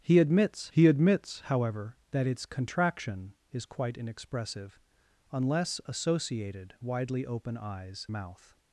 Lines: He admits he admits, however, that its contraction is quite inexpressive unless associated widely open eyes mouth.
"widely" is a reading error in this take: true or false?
false